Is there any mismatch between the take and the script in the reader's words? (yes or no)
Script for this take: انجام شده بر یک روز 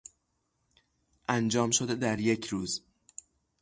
yes